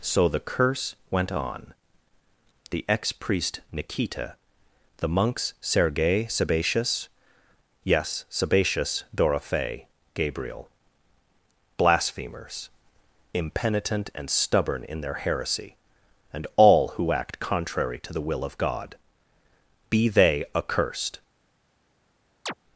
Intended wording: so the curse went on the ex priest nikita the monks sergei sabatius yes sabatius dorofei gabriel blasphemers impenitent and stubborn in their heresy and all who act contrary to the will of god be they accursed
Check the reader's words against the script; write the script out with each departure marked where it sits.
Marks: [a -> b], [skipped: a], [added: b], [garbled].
so the curse went on the ex priest nikita the monks sergei sabatius yes sabatius dorofei gabriel blasphemers impenitent and stubborn in their heresy and all who act contrary to the will of god be they accursed